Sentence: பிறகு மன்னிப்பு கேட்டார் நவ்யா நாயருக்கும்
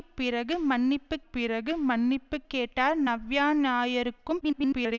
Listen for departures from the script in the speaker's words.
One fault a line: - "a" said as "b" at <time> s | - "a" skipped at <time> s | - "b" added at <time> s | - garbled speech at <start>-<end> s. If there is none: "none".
- "பிறகு மன்னிப்பு" added at 1.3 s
- garbled speech at 4.4-5.0 s